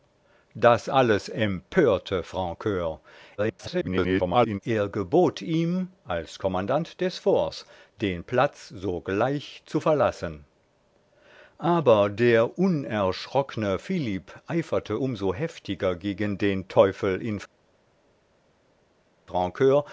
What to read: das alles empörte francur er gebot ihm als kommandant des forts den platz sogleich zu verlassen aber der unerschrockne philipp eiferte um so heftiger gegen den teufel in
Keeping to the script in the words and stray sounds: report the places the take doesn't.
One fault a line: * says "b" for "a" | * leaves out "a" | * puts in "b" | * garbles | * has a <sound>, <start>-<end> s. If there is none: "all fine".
* garbles